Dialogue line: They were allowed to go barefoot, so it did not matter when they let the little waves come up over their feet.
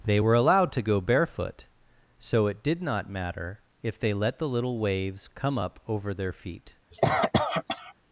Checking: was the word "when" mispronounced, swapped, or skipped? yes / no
yes